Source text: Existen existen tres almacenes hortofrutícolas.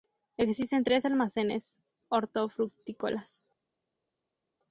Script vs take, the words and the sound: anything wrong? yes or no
yes